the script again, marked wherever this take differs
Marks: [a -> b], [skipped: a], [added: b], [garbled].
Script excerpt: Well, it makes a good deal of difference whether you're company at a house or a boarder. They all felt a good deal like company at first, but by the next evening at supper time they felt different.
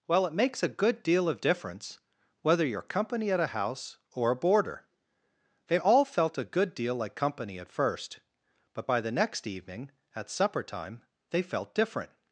Well, it makes a good deal of difference whether you're company at a house or a boarder. They all felt a good deal like company at first, but by the next evening at supper time they felt different.